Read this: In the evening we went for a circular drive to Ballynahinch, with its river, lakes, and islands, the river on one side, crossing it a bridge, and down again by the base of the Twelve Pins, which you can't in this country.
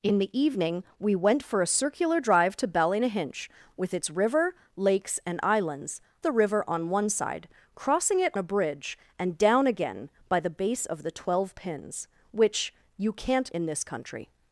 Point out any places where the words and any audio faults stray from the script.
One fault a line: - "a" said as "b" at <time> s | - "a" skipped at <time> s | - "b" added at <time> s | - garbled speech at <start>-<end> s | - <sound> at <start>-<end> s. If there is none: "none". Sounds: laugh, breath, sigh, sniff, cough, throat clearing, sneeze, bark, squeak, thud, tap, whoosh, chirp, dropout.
none